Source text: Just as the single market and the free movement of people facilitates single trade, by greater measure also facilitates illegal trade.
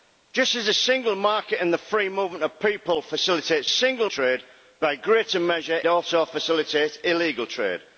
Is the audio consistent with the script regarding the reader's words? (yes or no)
yes